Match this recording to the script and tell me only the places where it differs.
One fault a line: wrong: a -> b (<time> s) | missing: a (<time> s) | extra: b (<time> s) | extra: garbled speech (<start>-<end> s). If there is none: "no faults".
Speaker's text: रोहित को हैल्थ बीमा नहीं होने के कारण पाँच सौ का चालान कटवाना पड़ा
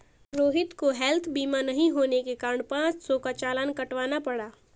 no faults